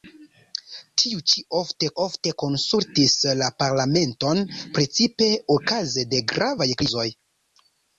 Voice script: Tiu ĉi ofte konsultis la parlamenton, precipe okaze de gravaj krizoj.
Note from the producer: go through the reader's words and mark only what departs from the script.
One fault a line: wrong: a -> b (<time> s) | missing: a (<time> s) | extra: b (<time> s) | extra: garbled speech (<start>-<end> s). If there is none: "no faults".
extra: ofte (2.0 s)